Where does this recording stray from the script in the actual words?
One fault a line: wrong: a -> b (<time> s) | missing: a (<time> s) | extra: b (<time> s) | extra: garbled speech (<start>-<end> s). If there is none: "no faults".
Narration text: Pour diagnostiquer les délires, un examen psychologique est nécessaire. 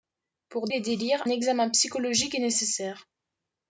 missing: diagnostiquer (0.7 s)
missing: un (1.2 s)